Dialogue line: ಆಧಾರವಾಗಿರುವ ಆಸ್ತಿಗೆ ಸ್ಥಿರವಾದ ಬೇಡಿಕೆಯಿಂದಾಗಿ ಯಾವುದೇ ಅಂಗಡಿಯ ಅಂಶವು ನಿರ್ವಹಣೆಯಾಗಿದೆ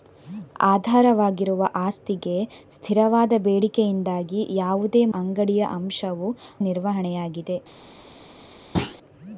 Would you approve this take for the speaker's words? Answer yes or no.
yes